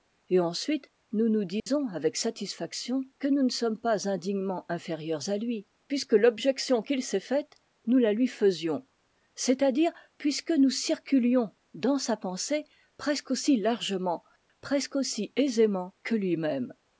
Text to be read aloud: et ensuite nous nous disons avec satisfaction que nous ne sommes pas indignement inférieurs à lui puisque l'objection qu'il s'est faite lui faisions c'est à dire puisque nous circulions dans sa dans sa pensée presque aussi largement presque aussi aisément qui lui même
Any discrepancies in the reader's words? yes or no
yes